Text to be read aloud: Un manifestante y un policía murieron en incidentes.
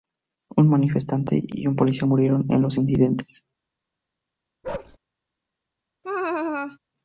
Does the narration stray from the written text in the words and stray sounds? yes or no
yes